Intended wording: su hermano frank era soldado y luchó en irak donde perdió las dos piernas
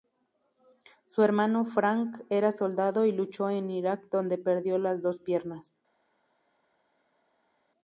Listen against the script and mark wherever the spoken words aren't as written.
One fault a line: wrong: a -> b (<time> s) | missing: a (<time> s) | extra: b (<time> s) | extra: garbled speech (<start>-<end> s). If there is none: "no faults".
no faults